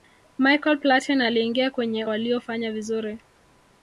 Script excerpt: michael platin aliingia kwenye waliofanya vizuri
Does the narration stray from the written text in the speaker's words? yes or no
no